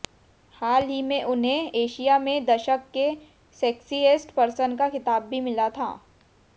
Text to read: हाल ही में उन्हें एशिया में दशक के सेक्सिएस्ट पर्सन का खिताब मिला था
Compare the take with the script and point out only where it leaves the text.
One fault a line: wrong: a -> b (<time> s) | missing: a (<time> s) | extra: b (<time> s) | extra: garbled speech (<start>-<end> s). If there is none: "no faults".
extra: भी (5.3 s)